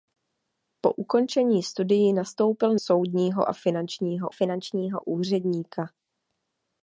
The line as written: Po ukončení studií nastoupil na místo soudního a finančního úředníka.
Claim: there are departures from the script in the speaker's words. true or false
true